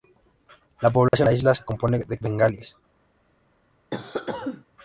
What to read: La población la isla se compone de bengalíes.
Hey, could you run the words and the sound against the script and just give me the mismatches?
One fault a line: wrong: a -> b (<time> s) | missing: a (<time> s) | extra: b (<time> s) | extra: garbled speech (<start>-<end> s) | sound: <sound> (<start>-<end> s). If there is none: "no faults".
sound: dropout (1.1-1.1 s)
sound: cough (3.9-4.6 s)